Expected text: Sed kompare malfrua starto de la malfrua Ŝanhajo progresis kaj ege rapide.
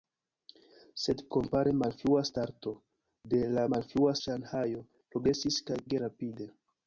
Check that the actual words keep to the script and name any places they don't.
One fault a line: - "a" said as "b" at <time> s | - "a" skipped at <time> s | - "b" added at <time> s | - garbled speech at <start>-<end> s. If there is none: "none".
none